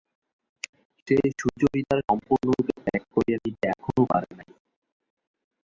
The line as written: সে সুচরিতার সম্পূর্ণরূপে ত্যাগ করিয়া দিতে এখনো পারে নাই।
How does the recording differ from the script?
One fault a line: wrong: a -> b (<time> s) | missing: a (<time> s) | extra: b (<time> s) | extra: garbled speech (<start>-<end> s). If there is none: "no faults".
no faults